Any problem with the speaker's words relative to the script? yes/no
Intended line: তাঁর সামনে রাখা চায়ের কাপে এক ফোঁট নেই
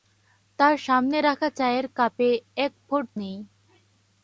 no